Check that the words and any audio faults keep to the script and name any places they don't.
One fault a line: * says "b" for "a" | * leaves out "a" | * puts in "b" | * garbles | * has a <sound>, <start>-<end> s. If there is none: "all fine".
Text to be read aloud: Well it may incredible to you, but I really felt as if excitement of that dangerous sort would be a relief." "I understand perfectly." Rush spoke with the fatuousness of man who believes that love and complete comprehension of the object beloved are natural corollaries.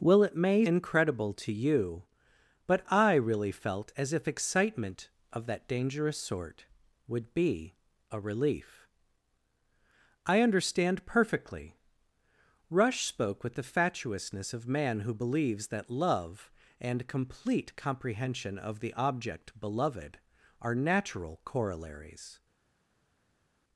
all fine